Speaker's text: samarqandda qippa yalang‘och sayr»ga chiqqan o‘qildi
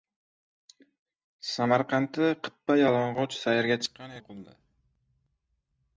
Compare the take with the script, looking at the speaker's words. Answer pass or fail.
pass